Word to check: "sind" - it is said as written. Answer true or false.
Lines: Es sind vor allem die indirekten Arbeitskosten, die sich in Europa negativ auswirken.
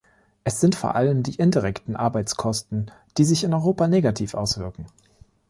true